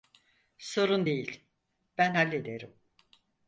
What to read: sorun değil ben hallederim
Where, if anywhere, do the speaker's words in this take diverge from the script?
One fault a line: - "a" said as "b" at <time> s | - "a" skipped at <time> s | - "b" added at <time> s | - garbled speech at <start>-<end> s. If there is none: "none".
none